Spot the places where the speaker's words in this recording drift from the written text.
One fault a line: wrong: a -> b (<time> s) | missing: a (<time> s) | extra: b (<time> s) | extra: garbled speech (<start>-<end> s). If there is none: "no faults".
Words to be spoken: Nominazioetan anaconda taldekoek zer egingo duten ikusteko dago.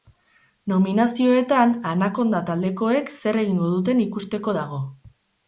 no faults